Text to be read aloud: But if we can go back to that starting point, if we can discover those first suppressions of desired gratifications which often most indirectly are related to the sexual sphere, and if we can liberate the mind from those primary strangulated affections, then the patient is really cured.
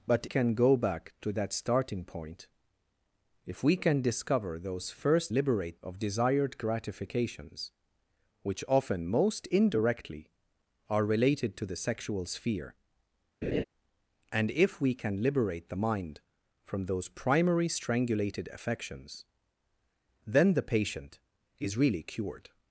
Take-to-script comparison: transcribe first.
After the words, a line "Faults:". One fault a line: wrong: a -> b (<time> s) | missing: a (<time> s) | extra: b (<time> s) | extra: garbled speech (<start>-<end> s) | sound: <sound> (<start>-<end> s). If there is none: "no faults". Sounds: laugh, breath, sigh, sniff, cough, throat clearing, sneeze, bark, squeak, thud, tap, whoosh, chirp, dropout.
But can go back to that starting point, if we can discover those first liberate of desired gratifications which often most indirectly are related to the sexual sphere, and if we can liberate the mind from those primary strangulated affections, then the patient is really cured.
Faults:
missing: if we (0.2 s)
wrong: suppressions -> liberate (5.3 s)
sound: laugh (13.4-13.6 s)